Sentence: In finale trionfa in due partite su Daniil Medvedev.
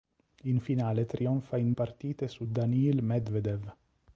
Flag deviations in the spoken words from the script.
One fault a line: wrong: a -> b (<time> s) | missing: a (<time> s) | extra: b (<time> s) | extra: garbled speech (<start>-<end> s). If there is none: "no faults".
missing: due (1.7 s)